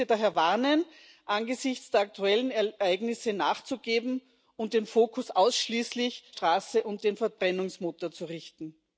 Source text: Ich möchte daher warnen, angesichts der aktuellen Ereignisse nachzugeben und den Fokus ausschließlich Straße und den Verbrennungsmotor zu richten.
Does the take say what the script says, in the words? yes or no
yes